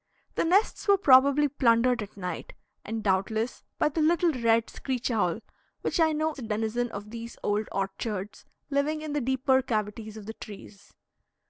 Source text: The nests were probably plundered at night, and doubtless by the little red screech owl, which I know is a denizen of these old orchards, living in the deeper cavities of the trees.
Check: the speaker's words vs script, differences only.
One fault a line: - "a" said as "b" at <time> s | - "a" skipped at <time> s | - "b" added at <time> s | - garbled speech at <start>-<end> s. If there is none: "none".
- "is" skipped at 6.3 s